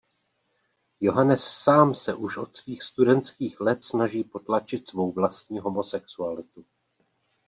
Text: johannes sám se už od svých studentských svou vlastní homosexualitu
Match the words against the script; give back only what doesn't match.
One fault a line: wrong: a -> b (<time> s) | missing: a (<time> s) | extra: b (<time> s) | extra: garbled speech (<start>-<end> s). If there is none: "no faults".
extra: let snaží potlačit (3.6 s)